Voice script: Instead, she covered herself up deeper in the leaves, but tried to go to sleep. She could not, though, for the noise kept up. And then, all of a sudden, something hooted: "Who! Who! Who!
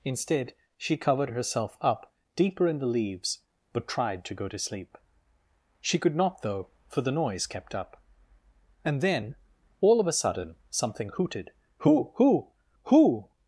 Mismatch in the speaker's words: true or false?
false